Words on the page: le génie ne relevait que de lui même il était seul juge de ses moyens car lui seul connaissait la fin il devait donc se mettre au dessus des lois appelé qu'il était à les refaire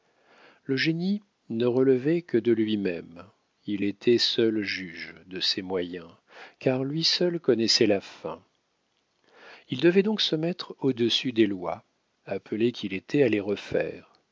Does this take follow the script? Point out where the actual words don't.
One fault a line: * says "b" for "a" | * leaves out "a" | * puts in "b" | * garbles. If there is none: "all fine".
all fine